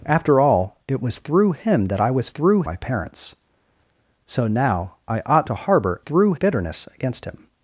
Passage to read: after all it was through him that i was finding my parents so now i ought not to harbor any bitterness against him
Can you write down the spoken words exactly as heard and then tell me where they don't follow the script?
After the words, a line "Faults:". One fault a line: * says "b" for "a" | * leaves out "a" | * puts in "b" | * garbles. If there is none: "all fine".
after all it was through him that i was through my parents so now i ought to harbor through bitterness against him
Faults:
* says "through" for "finding"
* leaves out "not"
* says "through" for "any"